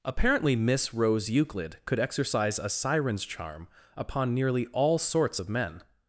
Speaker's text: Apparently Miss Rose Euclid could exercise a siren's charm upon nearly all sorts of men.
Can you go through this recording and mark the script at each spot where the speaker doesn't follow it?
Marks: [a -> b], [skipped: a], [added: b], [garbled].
Apparently Miss Rose Euclid could exercise a siren's charm upon nearly all sorts of men.